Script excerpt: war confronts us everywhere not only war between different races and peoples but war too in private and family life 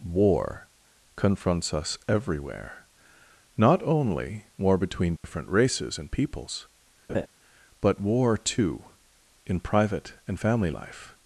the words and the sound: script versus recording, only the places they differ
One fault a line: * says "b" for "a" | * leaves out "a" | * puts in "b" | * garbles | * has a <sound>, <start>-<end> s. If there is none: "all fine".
* has a dropout, 5.2-5.2 s
* has a laugh, 7.1-7.3 s